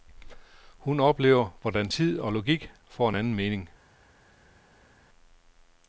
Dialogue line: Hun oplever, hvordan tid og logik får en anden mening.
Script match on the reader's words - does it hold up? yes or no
yes